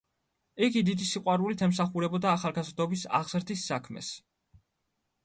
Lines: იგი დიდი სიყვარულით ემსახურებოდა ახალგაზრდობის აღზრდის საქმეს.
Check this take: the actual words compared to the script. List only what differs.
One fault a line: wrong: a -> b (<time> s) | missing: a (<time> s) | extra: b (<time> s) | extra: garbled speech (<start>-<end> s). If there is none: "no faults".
no faults